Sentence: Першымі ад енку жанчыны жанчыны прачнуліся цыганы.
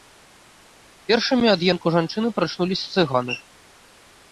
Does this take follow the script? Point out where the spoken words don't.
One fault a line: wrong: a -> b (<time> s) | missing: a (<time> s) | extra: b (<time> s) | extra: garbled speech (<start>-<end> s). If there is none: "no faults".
missing: жанчыны (2.3 s)